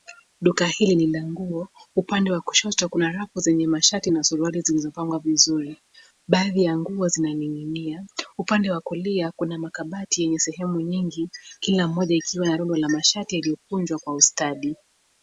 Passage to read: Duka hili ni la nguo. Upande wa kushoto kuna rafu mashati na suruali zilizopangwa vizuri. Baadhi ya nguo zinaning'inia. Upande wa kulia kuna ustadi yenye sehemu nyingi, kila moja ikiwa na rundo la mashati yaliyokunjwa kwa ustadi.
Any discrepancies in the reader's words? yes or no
yes